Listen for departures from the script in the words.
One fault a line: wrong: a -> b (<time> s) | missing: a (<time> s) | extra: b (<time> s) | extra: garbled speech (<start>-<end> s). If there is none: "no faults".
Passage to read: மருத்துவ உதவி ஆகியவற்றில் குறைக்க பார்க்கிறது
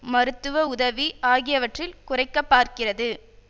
no faults